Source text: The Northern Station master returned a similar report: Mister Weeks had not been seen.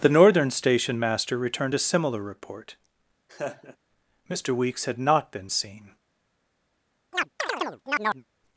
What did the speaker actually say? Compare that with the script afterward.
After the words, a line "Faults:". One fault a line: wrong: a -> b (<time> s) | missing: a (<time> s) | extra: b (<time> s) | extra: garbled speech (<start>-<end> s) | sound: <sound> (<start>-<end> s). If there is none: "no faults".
The Northern Station master returned a similar report: Mister Weeks had not been seen.
Faults:
sound: laugh (3.3-3.8 s)
sound: chirp (7.1-8.3 s)